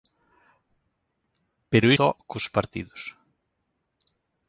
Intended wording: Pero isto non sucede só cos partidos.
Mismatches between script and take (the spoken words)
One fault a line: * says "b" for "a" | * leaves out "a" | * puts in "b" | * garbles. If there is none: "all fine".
* leaves out "isto non sucede"